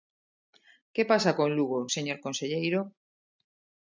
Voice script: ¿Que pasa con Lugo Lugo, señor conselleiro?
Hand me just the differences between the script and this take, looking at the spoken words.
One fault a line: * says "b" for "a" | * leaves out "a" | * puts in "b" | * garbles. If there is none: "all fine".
* leaves out "Lugo"